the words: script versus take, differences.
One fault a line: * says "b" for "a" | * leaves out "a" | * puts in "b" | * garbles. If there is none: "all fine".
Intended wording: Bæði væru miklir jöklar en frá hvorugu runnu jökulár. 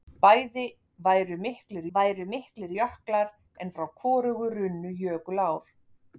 * puts in "væru miklir"